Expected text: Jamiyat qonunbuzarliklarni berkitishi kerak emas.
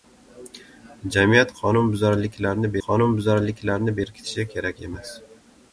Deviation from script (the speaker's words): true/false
true